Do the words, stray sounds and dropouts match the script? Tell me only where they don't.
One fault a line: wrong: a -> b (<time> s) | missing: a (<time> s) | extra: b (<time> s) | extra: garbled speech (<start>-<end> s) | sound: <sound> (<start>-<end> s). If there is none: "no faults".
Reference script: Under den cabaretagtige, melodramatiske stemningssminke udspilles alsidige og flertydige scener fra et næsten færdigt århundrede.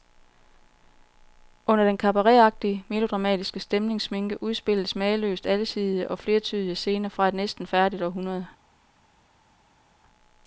extra: mageløst (5.0 s)